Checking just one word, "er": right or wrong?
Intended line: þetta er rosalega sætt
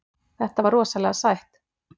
wrong